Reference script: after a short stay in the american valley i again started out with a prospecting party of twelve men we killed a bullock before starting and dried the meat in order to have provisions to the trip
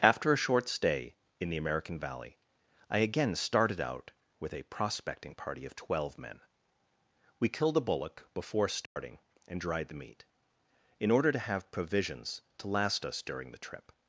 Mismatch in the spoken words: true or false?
true